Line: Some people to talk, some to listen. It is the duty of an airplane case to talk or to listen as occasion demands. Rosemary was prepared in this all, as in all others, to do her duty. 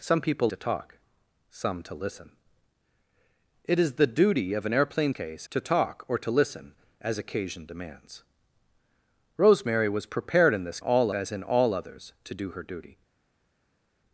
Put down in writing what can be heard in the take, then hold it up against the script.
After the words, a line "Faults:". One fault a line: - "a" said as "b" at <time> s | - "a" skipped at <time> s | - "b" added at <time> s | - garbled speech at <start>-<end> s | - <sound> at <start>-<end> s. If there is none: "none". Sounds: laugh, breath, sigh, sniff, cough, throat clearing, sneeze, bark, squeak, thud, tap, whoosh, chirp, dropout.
Some people to talk, some to listen. It is the duty of an airplane case to talk or to listen as occasion demands. Rosemary was prepared in this all, as in all others, to do her duty.
Faults:
none